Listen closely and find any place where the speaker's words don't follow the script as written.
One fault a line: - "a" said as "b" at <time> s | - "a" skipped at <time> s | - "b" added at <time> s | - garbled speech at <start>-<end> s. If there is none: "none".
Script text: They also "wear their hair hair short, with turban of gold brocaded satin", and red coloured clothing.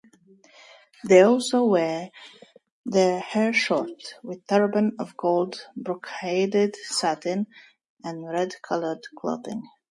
- "hair" skipped at 3.5 s